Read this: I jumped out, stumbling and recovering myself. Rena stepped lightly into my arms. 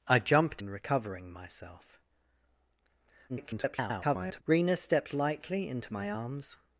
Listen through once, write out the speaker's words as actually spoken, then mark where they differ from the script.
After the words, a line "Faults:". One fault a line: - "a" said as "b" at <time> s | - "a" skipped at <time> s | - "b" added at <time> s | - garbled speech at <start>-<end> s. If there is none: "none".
I jumped and recovering myself. [garbled] Rena stepped lightly into my arms.
Faults:
- "out stumbling" skipped at 0.6 s
- garbled speech at 3.3-4.4 s